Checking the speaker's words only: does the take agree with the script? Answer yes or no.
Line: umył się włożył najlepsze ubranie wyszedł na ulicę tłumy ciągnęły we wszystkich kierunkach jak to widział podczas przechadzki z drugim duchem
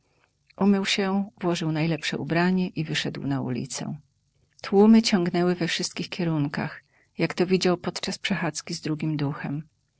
no